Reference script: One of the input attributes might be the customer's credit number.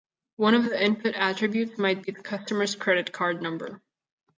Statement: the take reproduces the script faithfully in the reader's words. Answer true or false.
false